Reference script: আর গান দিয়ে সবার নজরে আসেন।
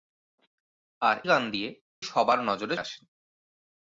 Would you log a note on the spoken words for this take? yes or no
no